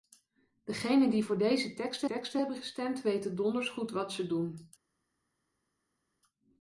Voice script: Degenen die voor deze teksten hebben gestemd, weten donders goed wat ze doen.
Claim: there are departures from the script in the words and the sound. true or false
true